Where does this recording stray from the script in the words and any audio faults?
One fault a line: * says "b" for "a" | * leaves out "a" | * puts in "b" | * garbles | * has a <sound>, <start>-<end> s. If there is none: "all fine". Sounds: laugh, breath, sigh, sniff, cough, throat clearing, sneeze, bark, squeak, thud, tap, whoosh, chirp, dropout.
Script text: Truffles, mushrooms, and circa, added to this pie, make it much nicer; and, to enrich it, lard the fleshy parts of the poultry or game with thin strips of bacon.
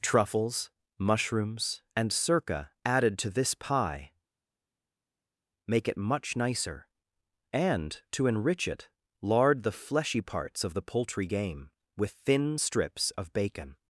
* leaves out "or"